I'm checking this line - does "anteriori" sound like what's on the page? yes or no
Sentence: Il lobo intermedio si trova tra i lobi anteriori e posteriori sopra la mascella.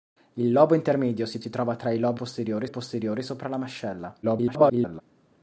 no